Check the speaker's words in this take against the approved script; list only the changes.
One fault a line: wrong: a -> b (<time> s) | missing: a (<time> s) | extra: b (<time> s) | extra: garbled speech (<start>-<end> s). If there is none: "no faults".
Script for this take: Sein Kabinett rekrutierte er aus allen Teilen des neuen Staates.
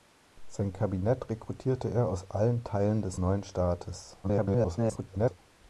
extra: garbled speech (4.2-5.4 s)